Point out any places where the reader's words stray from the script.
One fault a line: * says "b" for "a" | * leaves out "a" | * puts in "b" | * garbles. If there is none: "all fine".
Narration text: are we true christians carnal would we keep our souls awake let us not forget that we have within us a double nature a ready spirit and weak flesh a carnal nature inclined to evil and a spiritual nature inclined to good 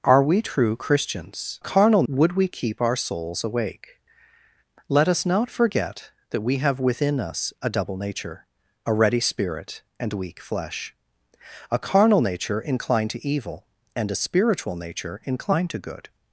all fine